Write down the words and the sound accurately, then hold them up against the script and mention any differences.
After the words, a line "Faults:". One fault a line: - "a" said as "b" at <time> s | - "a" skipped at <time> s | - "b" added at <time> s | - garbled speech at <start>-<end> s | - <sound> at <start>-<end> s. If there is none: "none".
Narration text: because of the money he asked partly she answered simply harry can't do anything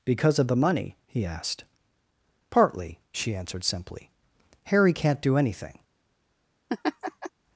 because of the money he asked partly she answered simply harry can't do anything
Faults:
- laugh at 6.7-7.3 s